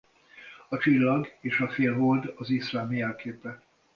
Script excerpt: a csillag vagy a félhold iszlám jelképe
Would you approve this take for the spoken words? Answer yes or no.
no